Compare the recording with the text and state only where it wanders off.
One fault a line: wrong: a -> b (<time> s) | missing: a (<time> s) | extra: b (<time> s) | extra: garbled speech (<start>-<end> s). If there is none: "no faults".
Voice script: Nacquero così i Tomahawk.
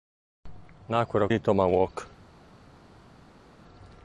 missing: così (1.3 s)